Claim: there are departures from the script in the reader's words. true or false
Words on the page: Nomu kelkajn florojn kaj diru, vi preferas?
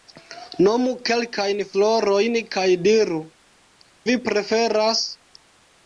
false